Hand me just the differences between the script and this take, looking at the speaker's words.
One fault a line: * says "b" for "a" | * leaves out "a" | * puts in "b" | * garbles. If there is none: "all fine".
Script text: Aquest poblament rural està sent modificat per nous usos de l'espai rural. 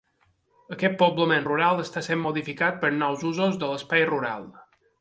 all fine